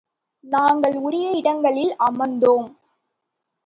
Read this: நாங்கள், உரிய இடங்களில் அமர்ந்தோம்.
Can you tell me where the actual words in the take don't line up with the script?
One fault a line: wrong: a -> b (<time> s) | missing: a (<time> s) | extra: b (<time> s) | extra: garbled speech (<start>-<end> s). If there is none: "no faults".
no faults